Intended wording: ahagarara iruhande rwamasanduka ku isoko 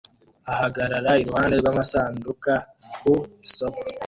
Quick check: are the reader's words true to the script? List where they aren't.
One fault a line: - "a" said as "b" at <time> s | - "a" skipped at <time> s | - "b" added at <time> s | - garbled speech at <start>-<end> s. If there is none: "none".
none